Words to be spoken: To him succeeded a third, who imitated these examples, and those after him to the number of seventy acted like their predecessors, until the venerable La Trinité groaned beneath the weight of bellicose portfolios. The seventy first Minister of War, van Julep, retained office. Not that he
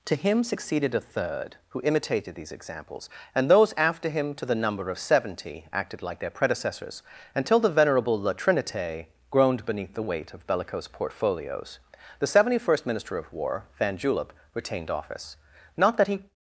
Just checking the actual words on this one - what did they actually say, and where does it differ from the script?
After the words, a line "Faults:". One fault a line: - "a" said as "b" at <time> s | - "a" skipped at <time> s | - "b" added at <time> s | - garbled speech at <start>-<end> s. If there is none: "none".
To him succeeded a third, who imitated these examples, and those after him to the number of seventy acted like their predecessors, until the venerable La Trinité groaned beneath the weight of bellicose portfolios. The seventy first Minister of War, van Julep, retained office. Not that he
Faults:
none